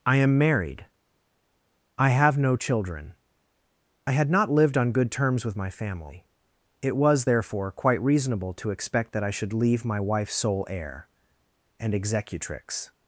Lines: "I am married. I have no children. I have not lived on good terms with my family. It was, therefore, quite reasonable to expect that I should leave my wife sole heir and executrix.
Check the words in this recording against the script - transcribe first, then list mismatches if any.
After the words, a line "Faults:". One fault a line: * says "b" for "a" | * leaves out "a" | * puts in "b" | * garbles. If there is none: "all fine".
"I am married. I have no children. I had not lived on good terms with my family. It was, therefore, quite reasonable to expect that I should leave my wife sole heir and executrix.
Faults:
* says "had" for "have"